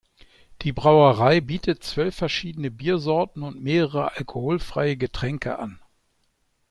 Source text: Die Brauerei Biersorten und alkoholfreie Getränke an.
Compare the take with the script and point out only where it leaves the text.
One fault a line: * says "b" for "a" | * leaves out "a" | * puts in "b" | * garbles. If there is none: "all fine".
* puts in "bietet zwölf verschiedene"
* puts in "mehrere"